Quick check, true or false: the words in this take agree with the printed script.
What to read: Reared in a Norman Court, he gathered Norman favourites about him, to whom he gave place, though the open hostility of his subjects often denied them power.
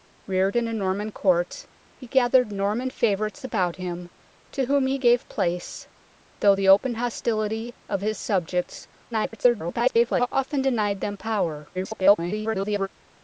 false